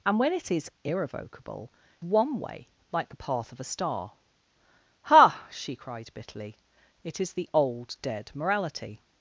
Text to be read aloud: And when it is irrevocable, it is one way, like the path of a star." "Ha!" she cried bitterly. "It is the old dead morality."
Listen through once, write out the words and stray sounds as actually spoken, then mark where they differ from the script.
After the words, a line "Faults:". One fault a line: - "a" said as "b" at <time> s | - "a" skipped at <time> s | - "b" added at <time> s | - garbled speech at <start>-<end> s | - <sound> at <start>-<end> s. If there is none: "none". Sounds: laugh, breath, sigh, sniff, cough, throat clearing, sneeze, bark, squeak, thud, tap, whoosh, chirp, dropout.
And when it is irrevocable, one way, like the path of a star." "Ha!" she cried bitterly. "It is the old dead morality."
Faults:
- "it is" skipped at 1.7 s